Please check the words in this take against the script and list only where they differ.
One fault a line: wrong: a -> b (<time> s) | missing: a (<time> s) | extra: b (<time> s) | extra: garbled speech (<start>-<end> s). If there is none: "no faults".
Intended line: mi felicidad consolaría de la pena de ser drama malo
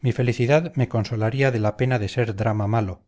extra: me (0.8 s)